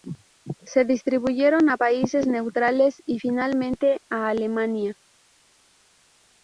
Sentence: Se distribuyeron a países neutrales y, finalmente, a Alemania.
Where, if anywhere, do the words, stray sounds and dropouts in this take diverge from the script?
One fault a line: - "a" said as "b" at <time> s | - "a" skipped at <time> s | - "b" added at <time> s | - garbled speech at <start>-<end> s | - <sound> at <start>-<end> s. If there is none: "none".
none